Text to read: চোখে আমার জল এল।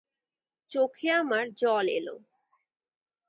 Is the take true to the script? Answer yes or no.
yes